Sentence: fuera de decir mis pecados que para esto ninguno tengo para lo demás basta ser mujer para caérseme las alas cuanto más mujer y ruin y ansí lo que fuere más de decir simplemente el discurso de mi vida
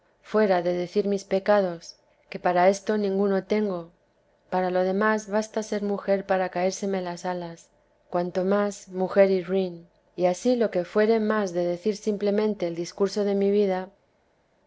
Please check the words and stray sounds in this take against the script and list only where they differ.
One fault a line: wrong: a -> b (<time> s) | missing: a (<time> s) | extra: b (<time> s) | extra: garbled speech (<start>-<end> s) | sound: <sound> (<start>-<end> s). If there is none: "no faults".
no faults